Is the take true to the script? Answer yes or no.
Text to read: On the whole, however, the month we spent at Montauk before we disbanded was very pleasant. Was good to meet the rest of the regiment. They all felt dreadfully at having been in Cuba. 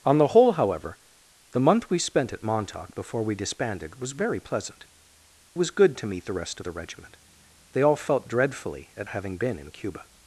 yes